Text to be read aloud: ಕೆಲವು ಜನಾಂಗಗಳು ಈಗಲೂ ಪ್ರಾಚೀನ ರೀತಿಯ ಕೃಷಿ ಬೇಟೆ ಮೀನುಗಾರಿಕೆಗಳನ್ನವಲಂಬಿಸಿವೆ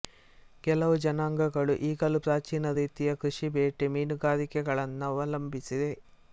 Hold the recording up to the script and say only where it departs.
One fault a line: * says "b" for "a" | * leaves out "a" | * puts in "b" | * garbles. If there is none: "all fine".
all fine